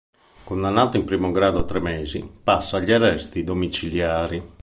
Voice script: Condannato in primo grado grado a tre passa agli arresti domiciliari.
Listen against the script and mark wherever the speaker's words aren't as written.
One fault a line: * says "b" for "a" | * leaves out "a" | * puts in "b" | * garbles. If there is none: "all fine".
* leaves out "grado"
* puts in "mesi"